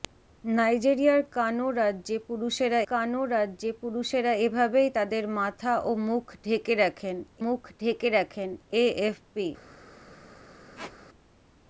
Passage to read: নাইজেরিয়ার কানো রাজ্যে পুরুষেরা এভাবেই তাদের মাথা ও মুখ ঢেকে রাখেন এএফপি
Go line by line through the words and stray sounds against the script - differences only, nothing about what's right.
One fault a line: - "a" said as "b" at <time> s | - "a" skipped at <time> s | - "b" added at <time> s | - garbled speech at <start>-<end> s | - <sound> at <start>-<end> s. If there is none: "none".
- "কানো রাজ্যে পুরুষেরা" added at 2.9 s
- "মুখ ঢেকে রাখেন" added at 7.4 s
- squeak at 10.8-11.0 s